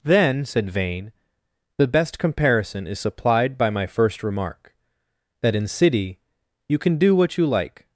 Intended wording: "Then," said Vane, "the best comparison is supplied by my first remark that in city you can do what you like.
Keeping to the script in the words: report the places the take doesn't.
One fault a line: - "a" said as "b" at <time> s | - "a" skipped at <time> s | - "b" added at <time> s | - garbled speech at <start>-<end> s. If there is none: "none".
none